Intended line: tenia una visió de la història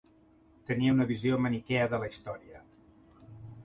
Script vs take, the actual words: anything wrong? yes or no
yes